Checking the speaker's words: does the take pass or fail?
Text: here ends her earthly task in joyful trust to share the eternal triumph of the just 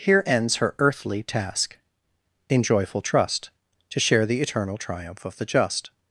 pass